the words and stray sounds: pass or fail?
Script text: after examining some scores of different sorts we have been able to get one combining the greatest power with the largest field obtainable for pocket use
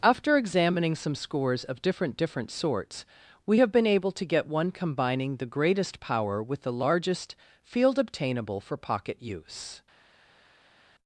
fail